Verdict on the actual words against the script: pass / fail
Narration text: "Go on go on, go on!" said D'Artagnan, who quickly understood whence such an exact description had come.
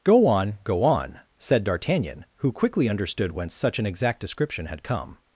fail